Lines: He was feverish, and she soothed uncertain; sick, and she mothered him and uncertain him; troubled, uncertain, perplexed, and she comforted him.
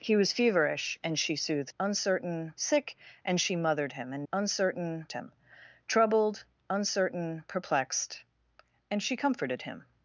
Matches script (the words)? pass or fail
pass